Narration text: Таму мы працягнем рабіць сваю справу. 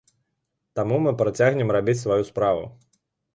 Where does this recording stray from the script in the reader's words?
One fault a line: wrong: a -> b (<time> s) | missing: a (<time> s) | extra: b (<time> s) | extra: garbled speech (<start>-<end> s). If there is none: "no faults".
no faults